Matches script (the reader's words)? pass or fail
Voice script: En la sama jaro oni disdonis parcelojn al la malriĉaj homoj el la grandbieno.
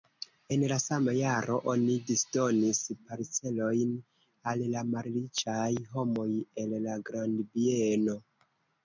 pass